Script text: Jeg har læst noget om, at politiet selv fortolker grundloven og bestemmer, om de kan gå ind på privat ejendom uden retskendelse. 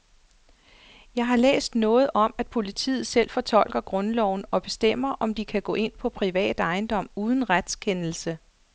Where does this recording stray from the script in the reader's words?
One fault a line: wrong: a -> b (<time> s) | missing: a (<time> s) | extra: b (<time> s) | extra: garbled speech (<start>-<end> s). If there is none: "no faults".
no faults